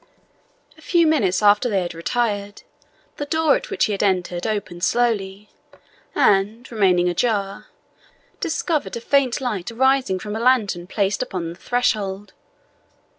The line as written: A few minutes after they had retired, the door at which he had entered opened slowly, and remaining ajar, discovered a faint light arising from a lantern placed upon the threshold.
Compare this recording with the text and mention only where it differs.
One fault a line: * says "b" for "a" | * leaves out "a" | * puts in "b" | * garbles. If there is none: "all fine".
all fine